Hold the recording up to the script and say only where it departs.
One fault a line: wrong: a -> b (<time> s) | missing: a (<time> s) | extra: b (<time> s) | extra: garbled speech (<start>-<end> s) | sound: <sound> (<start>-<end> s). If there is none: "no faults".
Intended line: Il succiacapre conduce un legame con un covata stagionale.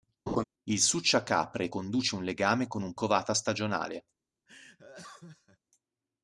sound: laugh (0.3-0.4 s)
sound: laugh (4.5-5.6 s)